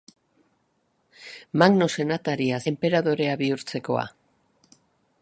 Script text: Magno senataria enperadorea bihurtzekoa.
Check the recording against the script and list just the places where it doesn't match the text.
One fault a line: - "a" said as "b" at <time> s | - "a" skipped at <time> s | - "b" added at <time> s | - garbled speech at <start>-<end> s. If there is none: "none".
none